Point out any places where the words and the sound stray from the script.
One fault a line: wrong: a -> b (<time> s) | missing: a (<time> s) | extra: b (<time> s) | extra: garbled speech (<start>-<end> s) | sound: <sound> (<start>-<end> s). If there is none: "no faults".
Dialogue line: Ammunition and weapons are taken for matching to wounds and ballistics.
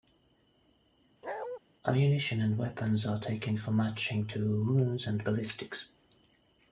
sound: bark (1.2-1.6 s)